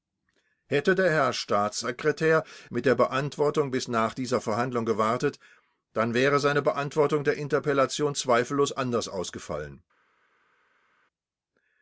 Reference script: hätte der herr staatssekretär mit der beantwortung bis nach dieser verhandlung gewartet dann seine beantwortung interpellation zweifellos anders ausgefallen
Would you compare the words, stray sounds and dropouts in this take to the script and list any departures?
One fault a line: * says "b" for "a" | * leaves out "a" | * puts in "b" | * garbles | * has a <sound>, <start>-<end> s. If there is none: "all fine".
* puts in "wäre"
* puts in "der"